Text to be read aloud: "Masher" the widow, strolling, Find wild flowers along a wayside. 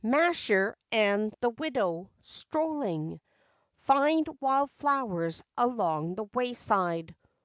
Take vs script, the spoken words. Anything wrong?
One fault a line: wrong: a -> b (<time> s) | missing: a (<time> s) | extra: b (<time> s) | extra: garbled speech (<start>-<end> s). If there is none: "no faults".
extra: and (0.9 s)
wrong: a -> the (6.1 s)